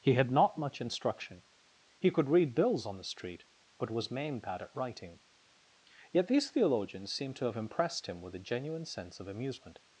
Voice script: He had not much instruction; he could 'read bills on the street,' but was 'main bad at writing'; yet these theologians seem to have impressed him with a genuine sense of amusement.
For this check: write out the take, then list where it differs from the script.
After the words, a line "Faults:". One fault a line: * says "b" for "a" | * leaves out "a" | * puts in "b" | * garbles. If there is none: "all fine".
He had not much instruction; he could 'read bills on the street,' but was 'main bad at writing'; yet these theologians seem to have impressed him with a genuine sense of amusement.
Faults:
all fine